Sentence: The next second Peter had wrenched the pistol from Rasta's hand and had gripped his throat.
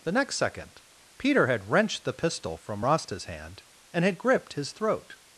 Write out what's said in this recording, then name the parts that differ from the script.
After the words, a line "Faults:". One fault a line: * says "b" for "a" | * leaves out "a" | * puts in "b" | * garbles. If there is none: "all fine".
The next second Peter had wrenched the pistol from Rasta's hand and had gripped his throat.
Faults:
all fine